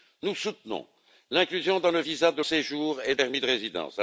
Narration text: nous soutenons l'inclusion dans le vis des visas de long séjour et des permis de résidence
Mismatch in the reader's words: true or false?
true